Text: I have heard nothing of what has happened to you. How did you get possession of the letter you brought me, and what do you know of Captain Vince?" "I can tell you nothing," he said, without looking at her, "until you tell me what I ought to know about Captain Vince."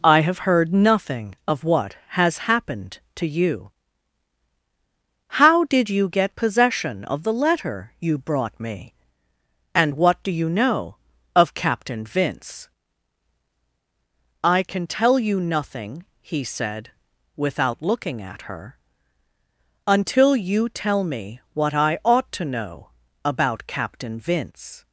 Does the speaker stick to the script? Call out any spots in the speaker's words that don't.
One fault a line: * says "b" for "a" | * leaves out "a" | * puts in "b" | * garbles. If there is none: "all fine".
all fine